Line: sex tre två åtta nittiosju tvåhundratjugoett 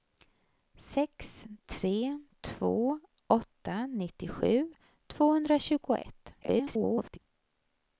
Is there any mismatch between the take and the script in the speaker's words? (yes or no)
yes